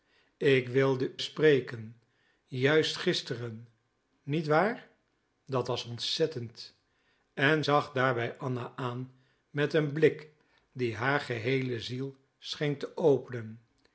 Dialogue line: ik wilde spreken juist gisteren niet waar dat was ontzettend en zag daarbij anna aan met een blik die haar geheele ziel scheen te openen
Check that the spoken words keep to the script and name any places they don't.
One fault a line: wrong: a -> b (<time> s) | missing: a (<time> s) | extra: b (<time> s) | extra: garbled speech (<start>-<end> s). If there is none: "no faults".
no faults